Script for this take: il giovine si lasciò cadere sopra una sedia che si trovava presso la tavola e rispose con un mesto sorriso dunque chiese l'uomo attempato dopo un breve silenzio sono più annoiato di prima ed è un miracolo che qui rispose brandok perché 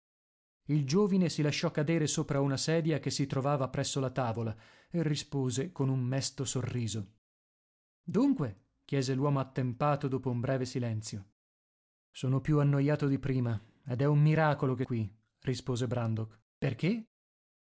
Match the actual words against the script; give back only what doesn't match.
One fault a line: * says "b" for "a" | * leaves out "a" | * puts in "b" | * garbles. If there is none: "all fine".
all fine